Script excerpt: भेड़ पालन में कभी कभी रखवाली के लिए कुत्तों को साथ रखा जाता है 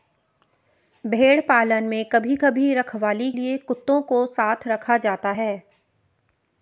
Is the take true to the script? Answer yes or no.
no